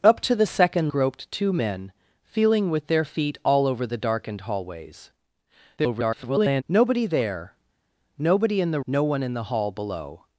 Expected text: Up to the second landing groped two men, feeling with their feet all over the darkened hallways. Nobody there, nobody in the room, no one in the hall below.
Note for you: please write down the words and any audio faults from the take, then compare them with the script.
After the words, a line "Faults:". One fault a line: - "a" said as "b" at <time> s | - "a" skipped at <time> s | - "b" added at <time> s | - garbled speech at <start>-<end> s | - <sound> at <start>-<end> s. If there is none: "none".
Up to the second groped two men, feeling with their feet all over the darkened hallways. [garbled] Nobody there, nobody in the no one in the hall below.
Faults:
- "landing" skipped at 0.9 s
- garbled speech at 5.8-6.6 s
- "room" skipped at 8.8 s